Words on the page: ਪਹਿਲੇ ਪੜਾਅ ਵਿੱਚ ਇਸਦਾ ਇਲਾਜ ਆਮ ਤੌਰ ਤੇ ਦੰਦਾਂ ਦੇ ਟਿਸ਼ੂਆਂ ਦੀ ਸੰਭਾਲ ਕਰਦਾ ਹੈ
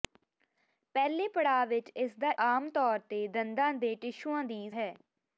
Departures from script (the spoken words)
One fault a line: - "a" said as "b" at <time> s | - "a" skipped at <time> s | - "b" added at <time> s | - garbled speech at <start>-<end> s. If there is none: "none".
- "ਇਲਾਜ" skipped at 2.3 s
- "ਸੰਭਾਲ ਕਰਦਾ" skipped at 4.7 s